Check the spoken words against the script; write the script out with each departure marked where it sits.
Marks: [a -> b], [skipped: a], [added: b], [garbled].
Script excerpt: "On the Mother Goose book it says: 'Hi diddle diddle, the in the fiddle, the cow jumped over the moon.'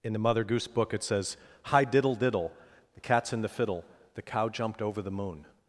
["On -> In] the Mother Goose book it says: 'Hi diddle diddle, the [added: cat's] in the fiddle, the cow jumped over the moon.'